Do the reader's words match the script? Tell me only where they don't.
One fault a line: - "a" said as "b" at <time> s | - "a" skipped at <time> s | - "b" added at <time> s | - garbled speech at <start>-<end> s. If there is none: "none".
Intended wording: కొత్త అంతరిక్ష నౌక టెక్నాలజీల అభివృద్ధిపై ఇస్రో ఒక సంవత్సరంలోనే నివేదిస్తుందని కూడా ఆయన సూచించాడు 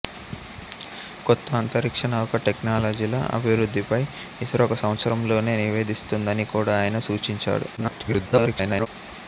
- garbled speech at 7.8-8.9 s